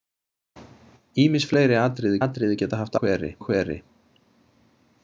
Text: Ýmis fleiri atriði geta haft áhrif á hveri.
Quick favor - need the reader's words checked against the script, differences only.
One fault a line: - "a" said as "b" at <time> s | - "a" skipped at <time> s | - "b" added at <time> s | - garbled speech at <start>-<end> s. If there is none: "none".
- "atriði" added at 2.2 s
- "áhrif" said as "hveri" at 3.0 s